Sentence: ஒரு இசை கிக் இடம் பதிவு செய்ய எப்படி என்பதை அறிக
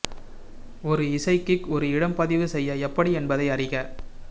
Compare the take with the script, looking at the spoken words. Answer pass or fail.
fail